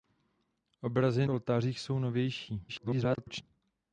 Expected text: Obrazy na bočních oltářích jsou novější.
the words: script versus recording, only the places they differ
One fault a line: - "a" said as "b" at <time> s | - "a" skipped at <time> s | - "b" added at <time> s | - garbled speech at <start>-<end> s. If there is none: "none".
- "na bočních" skipped at 1.3 s
- garbled speech at 2.7-3.4 s